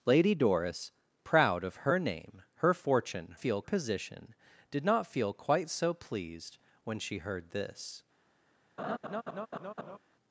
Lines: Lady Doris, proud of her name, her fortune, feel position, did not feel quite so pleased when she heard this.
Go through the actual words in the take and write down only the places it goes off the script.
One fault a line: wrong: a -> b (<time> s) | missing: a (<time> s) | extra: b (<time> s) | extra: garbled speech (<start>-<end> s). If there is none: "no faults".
no faults